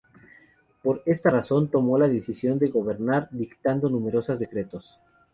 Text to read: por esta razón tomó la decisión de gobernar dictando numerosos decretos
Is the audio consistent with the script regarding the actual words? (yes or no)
yes